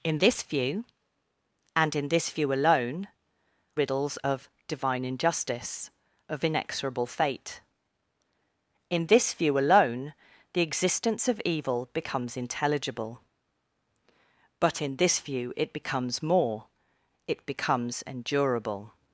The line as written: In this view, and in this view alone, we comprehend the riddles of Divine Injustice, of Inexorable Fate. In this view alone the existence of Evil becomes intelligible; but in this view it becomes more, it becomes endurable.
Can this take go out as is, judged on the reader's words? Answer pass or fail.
fail